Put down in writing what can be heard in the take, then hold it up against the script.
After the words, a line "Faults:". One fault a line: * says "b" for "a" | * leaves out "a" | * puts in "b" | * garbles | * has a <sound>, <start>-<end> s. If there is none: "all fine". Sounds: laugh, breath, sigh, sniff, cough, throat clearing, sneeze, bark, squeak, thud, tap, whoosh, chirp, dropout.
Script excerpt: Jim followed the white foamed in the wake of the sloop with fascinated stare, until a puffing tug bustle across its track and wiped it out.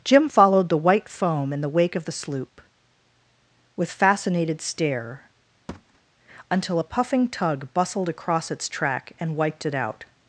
Jim followed the white foam in the wake of the sloop with fascinated stare, until a puffing tug bustled across its track and wiped it out.
Faults:
* says "foam" for "foamed"
* has a thud, 5.7-6.0 s
* says "bustled" for "bustle"